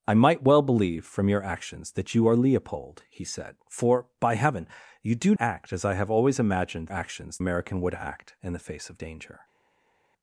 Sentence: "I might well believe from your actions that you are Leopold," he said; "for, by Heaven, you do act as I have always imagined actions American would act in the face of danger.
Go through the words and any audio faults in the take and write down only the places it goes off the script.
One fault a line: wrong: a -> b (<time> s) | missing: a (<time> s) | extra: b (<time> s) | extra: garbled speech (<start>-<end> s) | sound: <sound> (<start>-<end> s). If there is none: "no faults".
no faults